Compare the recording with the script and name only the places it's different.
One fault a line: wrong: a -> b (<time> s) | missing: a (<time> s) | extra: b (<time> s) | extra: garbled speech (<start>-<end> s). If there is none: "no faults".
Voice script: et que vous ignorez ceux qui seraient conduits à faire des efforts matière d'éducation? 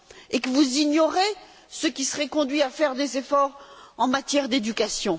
extra: en (4.0 s)